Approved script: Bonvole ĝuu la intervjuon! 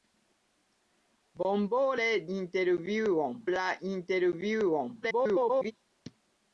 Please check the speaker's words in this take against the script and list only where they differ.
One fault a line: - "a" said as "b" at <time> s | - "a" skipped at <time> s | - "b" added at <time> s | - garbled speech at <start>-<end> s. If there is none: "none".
- "ĝuu" said as "intervjuon" at 2.4 s
- garbled speech at 5.0-5.7 s